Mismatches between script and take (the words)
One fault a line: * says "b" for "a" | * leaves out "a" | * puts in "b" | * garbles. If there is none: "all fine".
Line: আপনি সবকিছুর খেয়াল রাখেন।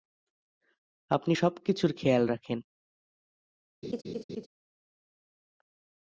all fine